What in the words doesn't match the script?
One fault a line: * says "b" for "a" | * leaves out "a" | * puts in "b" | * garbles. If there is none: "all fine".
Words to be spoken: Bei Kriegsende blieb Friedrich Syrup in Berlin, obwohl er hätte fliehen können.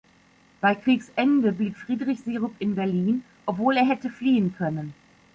all fine